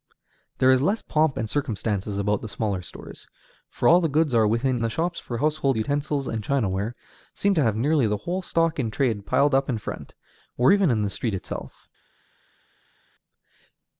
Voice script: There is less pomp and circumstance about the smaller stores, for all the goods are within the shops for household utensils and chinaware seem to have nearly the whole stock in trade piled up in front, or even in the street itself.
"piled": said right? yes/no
yes